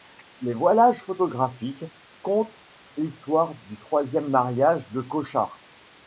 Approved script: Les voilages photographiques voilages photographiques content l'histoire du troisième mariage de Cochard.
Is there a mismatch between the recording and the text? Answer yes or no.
yes